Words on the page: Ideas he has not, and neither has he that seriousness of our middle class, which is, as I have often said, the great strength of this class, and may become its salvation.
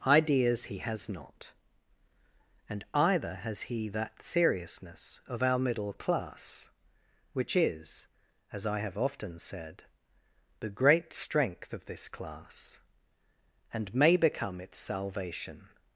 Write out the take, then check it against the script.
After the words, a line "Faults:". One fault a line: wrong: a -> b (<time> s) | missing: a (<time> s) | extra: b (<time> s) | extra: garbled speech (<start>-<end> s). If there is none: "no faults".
Ideas he has not, and either has he that seriousness of our middle class, which is, as I have often said, the great strength of this class, and may become its salvation.
Faults:
wrong: neither -> either (2.9 s)